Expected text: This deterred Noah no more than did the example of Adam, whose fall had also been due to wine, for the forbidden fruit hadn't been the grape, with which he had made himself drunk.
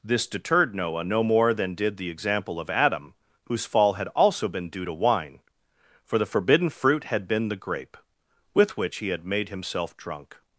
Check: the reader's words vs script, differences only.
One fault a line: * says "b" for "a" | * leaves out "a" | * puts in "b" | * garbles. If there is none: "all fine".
* says "had" for "hadn't"